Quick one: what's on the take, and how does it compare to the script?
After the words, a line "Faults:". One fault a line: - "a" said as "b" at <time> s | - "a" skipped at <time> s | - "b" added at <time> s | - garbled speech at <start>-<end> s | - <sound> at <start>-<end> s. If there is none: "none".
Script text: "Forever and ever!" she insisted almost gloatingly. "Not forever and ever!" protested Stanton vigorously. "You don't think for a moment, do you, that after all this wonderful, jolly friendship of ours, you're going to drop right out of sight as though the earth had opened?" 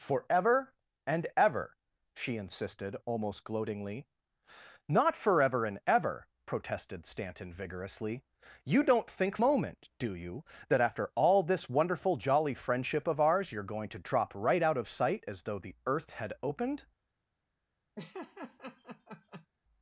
"Forever and ever!" she insisted almost gloatingly. "Not forever and ever!" protested Stanton vigorously. "You don't think moment, do you, that after all this wonderful, jolly friendship of ours, you're going to drop right out of sight as though the earth had opened?"
Faults:
- "for a" skipped at 9.4 s
- laugh at 18.0-19.5 s